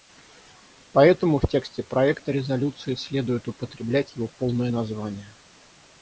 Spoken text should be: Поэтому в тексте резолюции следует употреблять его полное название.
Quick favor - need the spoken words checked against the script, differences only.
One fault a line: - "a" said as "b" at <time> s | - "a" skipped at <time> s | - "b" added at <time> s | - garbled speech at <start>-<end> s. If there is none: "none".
- "проекта" added at 1.8 s